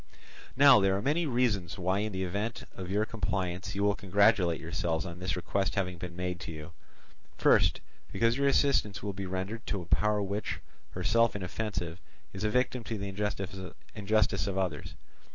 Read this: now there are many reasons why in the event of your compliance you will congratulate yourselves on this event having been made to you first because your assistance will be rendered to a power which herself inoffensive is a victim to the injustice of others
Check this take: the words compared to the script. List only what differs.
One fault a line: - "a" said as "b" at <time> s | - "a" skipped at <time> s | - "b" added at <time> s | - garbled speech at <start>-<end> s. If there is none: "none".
- "event" said as "request" at 5.3 s